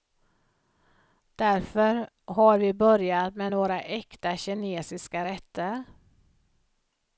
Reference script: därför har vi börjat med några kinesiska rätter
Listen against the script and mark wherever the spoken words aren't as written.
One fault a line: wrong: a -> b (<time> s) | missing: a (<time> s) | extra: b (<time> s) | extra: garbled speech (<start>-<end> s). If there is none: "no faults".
extra: äkta (3.8 s)